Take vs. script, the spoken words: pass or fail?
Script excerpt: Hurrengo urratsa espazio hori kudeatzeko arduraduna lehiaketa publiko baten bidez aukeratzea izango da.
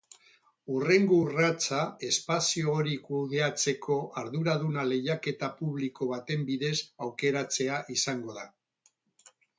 pass